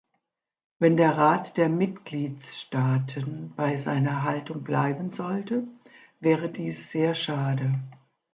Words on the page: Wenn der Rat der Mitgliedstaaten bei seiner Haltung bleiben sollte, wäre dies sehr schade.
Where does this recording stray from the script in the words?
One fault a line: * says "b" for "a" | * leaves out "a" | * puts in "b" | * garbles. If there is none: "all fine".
all fine